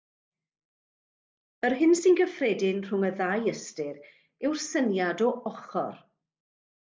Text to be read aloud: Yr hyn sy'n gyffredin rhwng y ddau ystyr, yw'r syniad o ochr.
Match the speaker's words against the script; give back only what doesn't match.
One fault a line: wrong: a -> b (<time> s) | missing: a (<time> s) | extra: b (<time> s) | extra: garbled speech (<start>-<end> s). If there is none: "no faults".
no faults